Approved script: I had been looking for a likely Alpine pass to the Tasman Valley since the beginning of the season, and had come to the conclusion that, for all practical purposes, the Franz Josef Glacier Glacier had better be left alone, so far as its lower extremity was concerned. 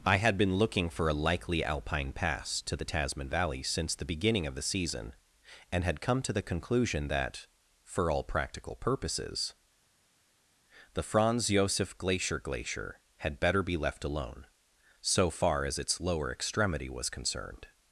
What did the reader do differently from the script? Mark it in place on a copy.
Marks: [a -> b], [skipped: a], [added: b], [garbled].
I had been looking for a likely Alpine pass to the Tasman Valley since the beginning of the season, and had come to the conclusion that, for all practical purposes, the Franz Josef Glacier Glacier had better be left alone, so far as its lower extremity was concerned.